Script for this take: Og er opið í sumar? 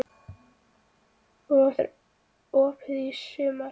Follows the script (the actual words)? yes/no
yes